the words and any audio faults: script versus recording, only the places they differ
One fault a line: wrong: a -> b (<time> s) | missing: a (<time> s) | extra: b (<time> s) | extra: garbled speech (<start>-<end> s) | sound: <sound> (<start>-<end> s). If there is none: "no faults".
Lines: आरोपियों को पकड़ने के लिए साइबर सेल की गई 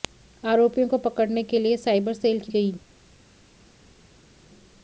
no faults